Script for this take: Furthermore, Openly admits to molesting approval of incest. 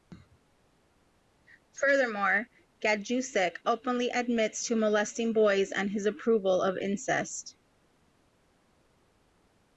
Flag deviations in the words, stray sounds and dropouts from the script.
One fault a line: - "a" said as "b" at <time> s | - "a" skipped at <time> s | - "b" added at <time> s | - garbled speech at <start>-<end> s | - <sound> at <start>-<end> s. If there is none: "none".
- "Gajdusek" added at 2.8 s
- "boys and his" added at 5.3 s